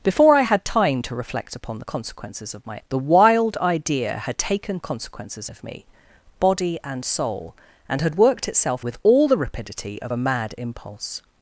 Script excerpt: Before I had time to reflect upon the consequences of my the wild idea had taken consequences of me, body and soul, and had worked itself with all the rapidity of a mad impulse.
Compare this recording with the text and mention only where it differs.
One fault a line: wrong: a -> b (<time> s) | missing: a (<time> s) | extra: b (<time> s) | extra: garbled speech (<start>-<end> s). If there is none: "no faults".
no faults